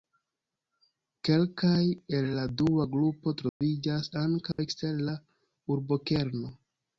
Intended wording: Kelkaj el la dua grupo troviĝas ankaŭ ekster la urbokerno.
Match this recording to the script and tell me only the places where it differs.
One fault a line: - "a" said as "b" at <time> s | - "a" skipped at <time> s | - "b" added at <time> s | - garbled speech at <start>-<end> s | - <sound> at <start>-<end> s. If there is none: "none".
- dropout at 3.5-3.6 s
- dropout at 4.5-4.6 s